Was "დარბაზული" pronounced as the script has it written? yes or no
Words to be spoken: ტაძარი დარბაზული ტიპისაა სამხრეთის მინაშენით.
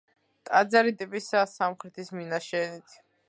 no